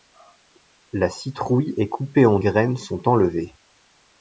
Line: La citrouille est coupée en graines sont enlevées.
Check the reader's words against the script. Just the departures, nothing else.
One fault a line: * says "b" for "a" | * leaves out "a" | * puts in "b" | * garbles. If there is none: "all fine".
all fine